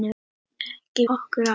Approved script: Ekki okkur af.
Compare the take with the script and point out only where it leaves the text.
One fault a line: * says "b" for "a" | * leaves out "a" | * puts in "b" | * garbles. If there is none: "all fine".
all fine